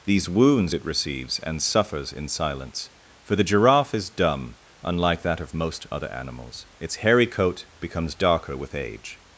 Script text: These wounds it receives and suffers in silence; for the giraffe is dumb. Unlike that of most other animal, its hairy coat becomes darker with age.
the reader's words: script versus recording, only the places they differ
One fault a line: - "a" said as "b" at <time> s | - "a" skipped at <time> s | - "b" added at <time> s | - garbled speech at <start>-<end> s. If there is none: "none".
- "animal" said as "animals" at 6.1 s